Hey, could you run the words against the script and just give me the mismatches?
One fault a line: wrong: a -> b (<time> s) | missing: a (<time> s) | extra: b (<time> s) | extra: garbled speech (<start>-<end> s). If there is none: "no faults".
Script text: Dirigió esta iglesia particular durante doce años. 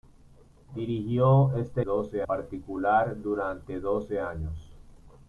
wrong: iglesia -> doce (1.8 s)